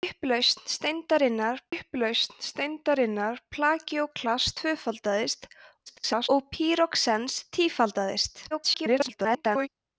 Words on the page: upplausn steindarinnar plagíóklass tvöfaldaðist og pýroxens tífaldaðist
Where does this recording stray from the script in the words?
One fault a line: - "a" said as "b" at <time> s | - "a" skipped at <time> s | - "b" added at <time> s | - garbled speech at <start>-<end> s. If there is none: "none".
- "upplausn steindarinnar" added at 1.7 s
- garbled speech at 5.9-6.3 s
- garbled speech at 8.5-9.7 s